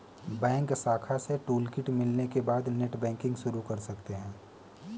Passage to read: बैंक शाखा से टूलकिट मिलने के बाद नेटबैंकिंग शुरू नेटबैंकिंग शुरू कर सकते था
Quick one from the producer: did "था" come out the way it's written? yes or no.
no